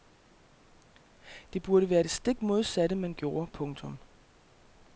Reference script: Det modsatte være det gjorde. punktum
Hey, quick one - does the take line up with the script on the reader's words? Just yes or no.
no